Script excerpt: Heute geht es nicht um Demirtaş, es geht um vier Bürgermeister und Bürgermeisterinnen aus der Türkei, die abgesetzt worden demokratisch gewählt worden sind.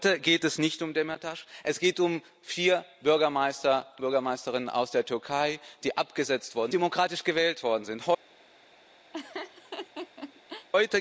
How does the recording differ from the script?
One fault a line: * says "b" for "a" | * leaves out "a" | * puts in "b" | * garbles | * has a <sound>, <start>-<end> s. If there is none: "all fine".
* has a laugh, 9.1-10.7 s